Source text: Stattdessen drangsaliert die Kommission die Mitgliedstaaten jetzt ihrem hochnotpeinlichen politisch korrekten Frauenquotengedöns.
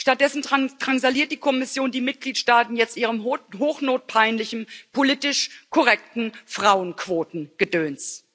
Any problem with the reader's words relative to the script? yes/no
no